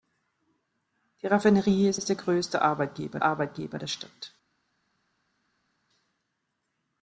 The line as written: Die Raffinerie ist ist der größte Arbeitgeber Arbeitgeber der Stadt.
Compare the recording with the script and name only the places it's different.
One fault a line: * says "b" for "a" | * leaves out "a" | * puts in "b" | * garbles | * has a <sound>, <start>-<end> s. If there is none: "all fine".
all fine